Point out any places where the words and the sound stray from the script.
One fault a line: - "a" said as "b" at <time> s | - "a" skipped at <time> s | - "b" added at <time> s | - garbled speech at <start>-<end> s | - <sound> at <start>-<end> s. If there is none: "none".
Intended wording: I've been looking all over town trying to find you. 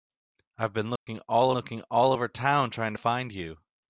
- dropout at 1.0-1.1 s
- "looking all" added at 1.5 s